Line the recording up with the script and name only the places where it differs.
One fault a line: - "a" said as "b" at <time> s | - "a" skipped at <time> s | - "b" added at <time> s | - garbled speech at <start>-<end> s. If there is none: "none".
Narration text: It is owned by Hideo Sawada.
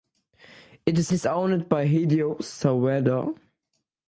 - "is" added at 1.1 s